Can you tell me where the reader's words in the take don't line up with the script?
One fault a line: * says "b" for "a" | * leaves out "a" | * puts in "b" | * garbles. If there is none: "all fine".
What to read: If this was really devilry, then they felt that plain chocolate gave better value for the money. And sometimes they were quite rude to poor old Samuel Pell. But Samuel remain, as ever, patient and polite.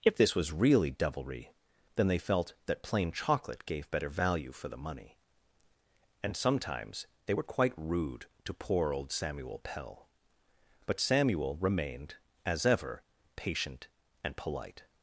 * says "remained" for "remain"